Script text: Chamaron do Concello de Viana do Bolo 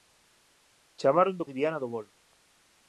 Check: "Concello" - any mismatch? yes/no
yes